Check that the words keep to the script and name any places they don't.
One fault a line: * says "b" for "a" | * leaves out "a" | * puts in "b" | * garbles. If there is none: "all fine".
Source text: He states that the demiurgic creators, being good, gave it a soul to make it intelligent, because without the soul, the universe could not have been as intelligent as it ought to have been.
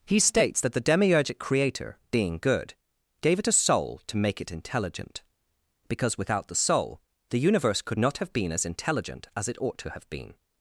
* says "creator" for "creators"